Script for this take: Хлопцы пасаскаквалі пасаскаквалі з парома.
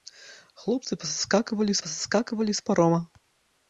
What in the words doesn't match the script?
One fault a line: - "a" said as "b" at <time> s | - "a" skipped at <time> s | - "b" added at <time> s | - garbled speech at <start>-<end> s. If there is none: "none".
none